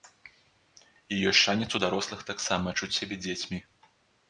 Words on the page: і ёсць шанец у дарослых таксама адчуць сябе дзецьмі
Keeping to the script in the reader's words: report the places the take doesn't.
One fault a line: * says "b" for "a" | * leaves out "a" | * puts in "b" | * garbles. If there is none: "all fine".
all fine